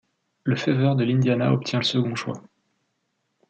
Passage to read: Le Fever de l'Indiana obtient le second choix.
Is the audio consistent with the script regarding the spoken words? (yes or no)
yes